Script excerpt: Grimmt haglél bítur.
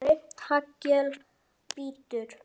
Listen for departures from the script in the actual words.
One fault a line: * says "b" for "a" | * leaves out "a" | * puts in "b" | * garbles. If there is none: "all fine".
all fine